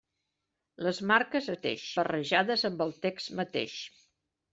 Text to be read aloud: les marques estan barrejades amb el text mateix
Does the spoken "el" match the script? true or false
true